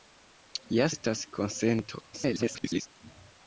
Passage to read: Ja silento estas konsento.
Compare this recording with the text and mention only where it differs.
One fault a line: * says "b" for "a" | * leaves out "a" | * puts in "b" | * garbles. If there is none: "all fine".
* leaves out "silento"
* garbles